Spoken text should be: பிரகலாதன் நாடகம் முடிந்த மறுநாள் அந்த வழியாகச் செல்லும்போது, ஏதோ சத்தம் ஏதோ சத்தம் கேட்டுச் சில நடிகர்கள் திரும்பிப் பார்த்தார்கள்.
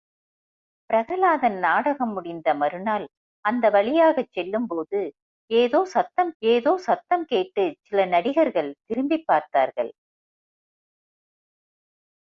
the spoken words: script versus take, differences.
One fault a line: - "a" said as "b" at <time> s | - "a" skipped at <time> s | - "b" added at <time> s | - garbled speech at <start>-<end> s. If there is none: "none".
none